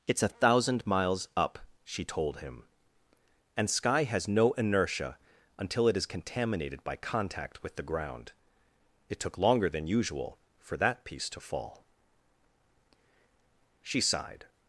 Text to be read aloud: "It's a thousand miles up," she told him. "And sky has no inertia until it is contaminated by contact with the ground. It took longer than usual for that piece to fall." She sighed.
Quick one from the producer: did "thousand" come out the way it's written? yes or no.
yes